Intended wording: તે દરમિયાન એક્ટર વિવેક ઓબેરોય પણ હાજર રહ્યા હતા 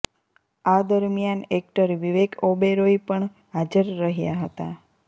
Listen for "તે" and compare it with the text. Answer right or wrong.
wrong